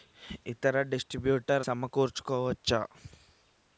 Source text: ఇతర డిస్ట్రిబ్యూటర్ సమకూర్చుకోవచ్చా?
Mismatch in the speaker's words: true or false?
false